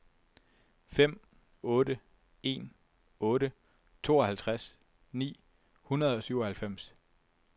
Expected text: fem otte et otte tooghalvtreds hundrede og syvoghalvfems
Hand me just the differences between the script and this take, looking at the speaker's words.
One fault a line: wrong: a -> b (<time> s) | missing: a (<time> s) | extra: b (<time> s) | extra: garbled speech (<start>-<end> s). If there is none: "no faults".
wrong: et -> en (2.4 s)
extra: ni (5.1 s)